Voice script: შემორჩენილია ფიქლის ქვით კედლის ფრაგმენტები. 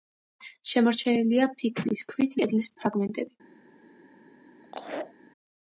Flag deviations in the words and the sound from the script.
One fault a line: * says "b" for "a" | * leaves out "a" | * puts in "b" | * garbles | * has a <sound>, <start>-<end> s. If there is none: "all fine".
* has a laugh, 4.6-5.1 s